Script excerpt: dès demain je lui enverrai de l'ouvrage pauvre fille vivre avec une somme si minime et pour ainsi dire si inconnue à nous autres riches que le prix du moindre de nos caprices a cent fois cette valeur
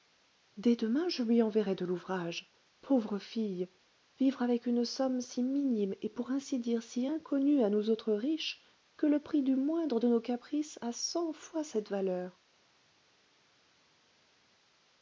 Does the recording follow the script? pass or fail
pass